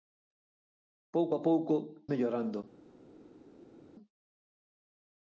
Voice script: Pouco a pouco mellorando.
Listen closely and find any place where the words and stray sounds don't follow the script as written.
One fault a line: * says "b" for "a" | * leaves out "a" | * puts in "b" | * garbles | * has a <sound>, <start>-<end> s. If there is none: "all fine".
all fine